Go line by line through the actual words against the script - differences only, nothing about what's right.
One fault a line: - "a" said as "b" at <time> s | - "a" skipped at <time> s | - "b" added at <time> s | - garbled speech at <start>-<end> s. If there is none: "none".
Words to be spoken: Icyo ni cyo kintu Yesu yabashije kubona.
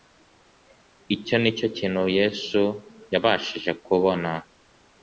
none